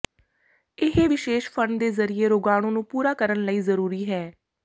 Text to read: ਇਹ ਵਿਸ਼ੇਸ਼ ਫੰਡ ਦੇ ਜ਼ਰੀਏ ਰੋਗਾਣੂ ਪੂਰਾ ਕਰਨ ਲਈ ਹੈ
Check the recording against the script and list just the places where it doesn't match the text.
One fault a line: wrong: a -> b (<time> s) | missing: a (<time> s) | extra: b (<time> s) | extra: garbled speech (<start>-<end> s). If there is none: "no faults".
extra: ਨੂੰ (2.7 s)
extra: ਜ਼ਰੂਰੀ (3.6 s)